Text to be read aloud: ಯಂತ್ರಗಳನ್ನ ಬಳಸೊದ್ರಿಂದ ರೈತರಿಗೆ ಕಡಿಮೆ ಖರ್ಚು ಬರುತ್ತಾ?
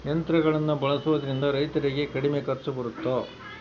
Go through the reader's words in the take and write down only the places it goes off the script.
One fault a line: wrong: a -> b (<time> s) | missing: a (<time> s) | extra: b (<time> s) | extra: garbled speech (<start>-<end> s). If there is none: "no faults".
no faults